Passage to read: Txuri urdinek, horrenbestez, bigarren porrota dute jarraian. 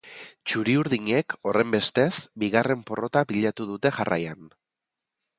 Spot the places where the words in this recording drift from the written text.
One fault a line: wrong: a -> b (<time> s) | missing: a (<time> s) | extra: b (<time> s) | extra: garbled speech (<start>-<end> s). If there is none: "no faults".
extra: pilatu (3.3 s)